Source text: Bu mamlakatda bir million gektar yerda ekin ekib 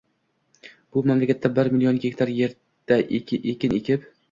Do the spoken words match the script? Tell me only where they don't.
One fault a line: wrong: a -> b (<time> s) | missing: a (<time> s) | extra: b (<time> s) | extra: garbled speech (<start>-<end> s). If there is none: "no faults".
no faults